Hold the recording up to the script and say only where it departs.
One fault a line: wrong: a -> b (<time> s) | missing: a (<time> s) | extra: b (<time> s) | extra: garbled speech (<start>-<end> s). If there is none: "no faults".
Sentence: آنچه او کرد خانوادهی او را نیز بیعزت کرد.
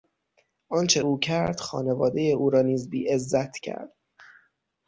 no faults